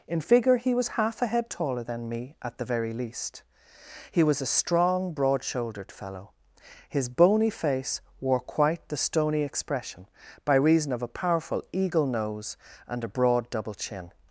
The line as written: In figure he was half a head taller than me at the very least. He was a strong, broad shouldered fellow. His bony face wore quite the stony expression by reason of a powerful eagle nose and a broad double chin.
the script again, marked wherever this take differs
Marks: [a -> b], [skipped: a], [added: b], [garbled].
In figure he was half a head taller than me at the very least. He was a strong, broad shouldered fellow. His bony face wore quite the stony expression by reason of a powerful eagle nose and a broad double chin.